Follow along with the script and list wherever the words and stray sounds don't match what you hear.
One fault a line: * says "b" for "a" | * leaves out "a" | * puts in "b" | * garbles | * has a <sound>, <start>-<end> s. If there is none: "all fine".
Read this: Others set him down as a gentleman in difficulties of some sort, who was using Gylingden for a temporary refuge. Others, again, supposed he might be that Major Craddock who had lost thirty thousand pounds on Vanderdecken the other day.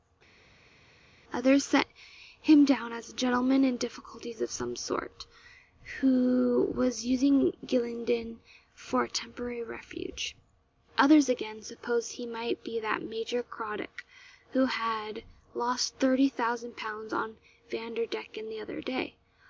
all fine